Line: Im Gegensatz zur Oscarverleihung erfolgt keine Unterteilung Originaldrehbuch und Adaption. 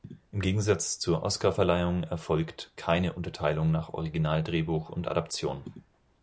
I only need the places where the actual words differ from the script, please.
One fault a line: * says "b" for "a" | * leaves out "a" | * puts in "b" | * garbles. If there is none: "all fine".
* puts in "nach"